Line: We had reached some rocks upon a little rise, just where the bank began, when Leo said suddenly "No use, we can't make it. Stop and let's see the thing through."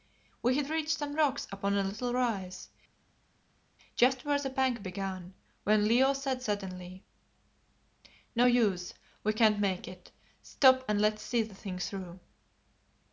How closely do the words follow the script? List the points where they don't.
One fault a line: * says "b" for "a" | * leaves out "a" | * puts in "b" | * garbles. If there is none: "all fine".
all fine